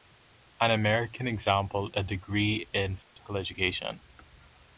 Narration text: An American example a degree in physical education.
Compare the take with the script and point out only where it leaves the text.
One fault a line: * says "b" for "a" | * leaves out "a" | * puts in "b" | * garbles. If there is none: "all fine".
all fine